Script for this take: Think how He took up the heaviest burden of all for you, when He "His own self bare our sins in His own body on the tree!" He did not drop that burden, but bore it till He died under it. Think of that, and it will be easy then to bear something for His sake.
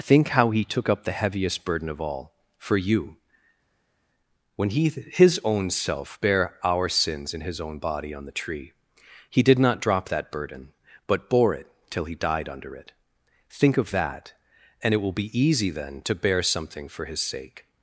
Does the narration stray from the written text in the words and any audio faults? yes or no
no